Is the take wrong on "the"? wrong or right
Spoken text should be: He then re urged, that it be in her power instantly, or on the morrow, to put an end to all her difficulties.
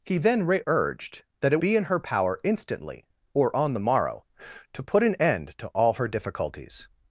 right